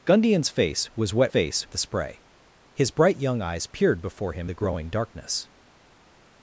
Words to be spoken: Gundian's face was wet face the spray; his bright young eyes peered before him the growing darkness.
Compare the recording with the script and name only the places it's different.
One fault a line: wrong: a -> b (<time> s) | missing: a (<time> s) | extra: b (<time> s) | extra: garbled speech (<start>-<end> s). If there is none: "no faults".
no faults